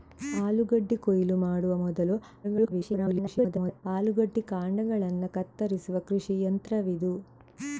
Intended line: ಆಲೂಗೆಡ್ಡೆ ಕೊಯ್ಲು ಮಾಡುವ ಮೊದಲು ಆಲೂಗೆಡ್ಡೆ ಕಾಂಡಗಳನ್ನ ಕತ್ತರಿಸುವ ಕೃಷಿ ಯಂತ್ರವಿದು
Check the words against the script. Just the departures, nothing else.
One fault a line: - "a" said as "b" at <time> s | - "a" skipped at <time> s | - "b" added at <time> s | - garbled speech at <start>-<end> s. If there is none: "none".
- garbled speech at 2.4-3.8 s